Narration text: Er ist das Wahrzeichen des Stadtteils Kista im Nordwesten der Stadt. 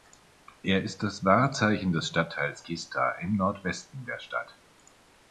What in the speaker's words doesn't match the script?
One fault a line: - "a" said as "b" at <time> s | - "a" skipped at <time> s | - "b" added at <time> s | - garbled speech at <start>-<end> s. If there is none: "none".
none